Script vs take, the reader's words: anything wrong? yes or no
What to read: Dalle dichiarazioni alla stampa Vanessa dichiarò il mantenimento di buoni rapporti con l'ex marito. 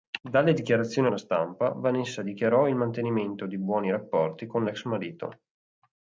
no